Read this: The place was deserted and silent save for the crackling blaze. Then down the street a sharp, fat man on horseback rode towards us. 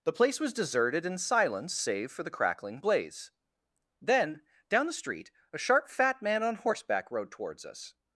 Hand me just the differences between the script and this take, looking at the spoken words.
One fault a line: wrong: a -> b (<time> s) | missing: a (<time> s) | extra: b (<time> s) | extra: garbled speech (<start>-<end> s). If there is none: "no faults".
no faults